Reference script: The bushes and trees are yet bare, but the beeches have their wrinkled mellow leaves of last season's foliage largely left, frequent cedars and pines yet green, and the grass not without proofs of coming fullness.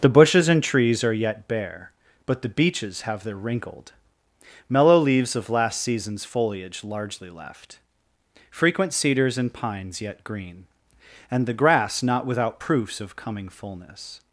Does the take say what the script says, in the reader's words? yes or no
yes